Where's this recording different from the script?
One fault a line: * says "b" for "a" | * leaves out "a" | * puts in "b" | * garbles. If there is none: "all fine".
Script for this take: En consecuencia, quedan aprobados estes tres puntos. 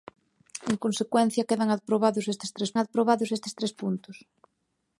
* puts in "aprobados estes tres"